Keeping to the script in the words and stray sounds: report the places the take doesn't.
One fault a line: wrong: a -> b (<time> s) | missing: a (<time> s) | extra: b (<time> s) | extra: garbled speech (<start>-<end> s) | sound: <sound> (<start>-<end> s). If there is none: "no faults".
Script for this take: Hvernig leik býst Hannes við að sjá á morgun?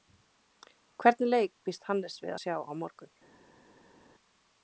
no faults